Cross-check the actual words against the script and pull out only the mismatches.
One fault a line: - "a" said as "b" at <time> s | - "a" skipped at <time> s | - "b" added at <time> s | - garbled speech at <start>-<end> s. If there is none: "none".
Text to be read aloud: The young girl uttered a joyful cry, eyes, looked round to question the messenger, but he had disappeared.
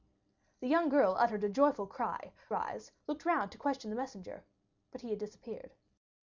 none